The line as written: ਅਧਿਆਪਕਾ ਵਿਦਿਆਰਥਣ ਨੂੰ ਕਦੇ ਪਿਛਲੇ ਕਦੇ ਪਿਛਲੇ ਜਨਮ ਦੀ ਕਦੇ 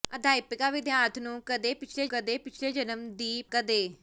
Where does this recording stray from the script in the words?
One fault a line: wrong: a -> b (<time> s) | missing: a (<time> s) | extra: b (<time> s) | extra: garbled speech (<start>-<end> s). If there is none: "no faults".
no faults